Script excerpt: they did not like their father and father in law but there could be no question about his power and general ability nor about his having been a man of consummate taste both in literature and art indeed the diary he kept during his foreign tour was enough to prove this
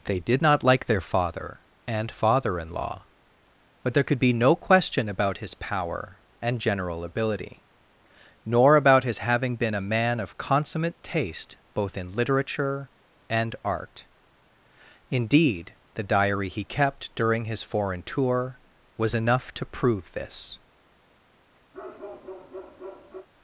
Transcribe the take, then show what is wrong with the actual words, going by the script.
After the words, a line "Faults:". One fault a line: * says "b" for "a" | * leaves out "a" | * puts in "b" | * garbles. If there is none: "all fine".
they did not like their father and father in law but there could be no question about his power and general ability nor about his having been a man of consummate taste both in literature and art indeed the diary he kept during his foreign tour was enough to prove this
Faults:
all fine